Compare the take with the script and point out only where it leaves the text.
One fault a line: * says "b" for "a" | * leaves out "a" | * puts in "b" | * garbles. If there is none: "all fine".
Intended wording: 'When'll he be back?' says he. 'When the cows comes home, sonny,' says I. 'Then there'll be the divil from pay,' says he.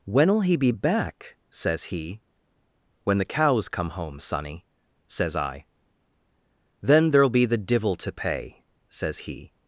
* says "come" for "comes"
* says "to" for "from"